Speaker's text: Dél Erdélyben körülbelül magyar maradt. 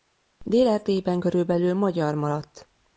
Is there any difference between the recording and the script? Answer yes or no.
no